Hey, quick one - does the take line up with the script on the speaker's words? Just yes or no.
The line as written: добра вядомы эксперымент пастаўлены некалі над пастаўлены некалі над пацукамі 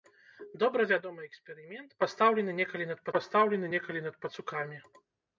yes